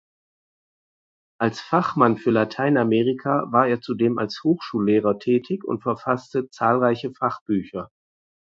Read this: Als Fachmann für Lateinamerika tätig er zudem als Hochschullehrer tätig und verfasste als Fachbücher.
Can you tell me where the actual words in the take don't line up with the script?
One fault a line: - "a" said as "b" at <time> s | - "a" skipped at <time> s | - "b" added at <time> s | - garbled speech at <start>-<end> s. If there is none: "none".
- "tätig" said as "war" at 3.5 s
- "als" said as "zahlreiche" at 6.5 s